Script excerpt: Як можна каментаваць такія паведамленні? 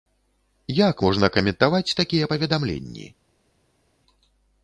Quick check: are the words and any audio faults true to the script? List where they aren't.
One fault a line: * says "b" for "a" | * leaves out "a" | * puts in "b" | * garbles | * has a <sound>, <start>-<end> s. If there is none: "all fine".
all fine